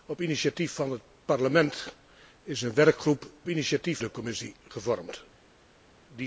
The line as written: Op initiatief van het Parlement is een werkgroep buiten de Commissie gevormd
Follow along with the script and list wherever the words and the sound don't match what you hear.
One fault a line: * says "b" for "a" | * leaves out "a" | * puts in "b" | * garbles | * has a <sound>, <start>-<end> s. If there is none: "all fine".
* says "initiatief" for "buiten"